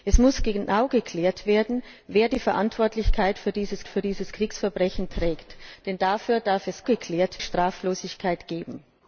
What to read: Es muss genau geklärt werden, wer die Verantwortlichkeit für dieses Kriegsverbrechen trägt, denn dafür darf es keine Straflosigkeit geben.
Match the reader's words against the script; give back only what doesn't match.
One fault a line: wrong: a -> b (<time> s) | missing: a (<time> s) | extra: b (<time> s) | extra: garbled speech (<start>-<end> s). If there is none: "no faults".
extra: für dieses (3.9 s)
wrong: keine -> geklärt (6.8 s)